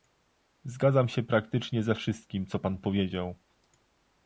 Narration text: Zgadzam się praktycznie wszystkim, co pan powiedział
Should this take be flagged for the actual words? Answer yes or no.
yes